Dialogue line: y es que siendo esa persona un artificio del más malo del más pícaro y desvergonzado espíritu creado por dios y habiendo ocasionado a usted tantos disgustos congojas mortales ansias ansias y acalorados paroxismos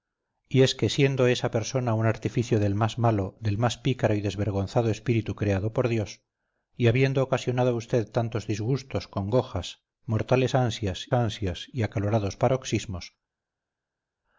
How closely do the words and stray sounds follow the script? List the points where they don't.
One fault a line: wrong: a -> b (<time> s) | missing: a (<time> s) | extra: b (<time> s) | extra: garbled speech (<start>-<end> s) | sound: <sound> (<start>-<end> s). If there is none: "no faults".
no faults